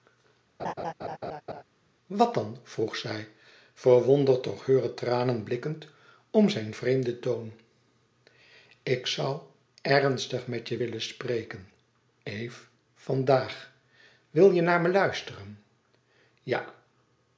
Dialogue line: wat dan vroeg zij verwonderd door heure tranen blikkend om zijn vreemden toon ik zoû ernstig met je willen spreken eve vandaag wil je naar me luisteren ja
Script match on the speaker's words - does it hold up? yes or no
yes